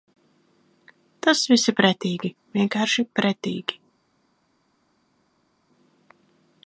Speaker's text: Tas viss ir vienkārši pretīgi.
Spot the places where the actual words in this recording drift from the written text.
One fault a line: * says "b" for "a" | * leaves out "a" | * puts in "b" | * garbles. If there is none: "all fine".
* puts in "pretīgi"